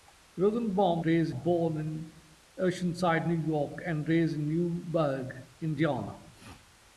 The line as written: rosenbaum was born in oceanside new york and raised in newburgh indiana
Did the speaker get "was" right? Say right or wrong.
wrong